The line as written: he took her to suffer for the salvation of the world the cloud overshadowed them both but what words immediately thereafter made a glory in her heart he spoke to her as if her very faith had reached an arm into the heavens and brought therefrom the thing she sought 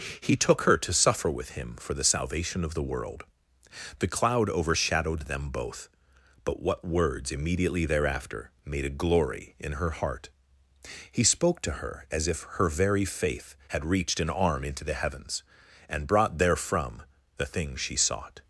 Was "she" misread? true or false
false